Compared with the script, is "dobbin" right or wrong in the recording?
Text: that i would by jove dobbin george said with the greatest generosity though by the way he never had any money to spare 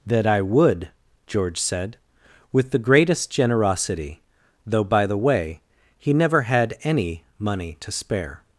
wrong